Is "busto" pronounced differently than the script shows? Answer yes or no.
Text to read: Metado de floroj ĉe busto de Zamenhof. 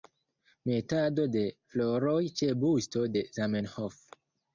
no